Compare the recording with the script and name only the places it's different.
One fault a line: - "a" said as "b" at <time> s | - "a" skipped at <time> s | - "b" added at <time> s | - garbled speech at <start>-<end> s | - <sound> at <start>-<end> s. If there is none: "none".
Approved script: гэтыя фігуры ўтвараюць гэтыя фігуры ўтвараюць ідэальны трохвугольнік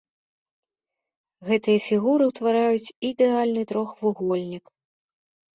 - "гэтыя фігуры ўтвараюць" skipped at 2.9 s